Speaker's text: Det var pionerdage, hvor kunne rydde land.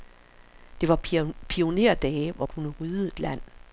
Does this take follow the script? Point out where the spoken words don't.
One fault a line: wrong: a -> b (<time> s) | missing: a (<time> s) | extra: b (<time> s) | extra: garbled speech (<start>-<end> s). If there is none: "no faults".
no faults